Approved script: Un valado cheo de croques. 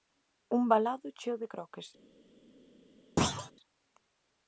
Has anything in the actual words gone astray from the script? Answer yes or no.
no